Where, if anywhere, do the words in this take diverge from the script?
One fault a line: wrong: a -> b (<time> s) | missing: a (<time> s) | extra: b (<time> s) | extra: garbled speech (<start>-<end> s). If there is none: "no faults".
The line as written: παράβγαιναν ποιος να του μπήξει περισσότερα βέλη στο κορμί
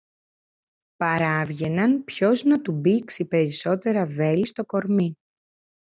no faults